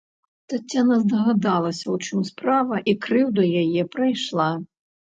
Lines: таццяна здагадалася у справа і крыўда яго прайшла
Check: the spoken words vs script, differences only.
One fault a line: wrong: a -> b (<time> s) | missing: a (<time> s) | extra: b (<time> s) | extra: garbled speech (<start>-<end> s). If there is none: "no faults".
extra: чым (2.0 s)
wrong: яго -> яе (3.6 s)